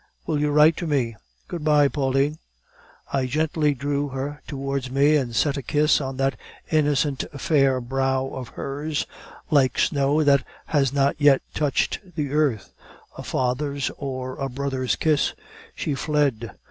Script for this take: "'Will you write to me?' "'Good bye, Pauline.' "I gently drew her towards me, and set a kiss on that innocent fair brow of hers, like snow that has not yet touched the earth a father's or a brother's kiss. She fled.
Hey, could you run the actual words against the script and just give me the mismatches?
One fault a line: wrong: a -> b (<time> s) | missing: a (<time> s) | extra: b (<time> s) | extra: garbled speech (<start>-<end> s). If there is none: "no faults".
no faults